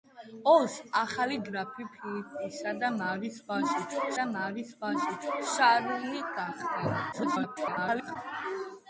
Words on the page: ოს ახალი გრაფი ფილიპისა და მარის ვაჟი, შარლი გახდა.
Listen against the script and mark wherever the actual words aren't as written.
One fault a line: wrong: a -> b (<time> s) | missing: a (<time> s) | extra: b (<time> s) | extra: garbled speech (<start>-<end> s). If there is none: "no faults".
extra: და მარის ვაჟი (4.2 s)
extra: garbled speech (7.1-8.2 s)